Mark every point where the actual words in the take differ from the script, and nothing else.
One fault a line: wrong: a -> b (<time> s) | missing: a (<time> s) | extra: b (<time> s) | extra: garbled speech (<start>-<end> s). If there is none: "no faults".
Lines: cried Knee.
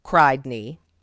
no faults